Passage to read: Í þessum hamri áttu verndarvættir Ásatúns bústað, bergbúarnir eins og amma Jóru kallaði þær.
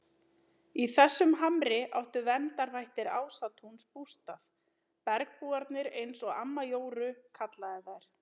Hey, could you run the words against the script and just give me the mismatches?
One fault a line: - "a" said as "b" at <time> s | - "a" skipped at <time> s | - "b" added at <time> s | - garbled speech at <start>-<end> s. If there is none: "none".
none